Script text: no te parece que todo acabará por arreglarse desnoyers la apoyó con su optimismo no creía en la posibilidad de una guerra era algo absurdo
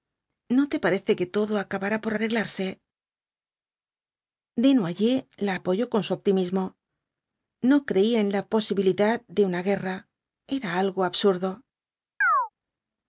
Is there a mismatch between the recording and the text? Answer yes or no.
no